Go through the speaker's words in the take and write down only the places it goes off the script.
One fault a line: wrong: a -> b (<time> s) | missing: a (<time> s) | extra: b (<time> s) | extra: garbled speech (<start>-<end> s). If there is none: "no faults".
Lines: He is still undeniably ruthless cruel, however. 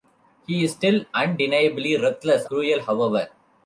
no faults